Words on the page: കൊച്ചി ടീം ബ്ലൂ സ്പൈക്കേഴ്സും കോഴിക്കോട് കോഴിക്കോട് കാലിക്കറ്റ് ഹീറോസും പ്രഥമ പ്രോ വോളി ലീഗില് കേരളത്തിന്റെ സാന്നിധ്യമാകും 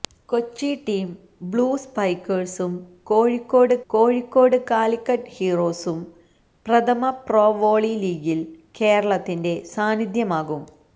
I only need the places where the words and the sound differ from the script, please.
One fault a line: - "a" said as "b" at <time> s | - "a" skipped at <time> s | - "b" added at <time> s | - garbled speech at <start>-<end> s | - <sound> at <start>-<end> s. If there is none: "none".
none